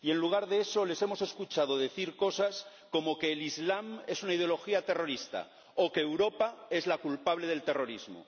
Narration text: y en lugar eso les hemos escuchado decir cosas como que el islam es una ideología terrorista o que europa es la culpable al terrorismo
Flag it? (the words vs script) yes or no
yes